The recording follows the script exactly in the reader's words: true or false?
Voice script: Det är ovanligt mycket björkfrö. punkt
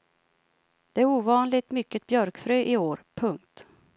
false